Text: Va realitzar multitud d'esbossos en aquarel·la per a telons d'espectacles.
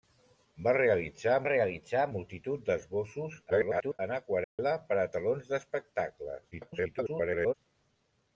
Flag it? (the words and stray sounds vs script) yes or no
yes